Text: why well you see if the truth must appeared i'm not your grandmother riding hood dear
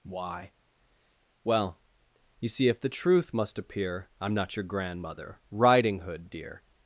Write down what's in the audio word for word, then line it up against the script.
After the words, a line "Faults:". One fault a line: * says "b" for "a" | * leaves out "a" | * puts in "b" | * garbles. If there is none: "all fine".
why well you see if the truth must appear i'm not your grandmother riding hood dear
Faults:
* says "appear" for "appeared"